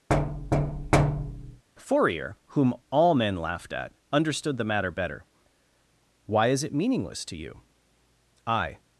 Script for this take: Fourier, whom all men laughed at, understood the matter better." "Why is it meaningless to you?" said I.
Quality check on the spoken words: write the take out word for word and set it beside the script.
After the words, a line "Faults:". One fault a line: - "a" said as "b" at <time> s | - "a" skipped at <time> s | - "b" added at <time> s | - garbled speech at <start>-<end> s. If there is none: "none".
Fourier, whom all men laughed at, understood the matter better." "Why is it meaningless to you?" I.
Faults:
- "said" skipped at 7.6 s